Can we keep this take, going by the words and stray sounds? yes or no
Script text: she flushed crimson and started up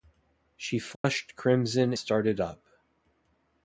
no